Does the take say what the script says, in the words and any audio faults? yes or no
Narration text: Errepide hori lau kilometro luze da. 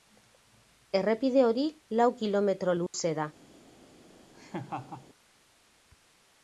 no